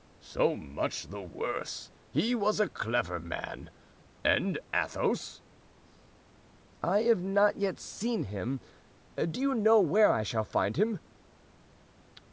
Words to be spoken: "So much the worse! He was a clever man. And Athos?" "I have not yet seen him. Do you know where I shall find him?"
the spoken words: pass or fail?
pass